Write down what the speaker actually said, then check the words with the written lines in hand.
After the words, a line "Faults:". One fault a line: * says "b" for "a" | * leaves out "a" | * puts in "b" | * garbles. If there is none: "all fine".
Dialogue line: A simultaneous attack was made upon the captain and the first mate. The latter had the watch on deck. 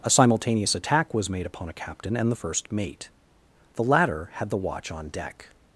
A simultaneous attack was made upon a captain and the first mate. The latter had the watch on deck.
Faults:
* says "a" for "the"